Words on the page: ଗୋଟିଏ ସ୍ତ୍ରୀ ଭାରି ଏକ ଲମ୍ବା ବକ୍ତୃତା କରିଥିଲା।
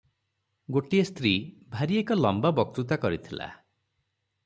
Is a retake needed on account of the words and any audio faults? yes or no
no